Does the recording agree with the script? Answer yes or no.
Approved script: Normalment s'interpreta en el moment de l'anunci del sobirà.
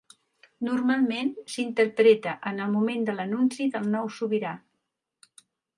no